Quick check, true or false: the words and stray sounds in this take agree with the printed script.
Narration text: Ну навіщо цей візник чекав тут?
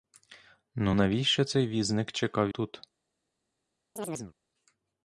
false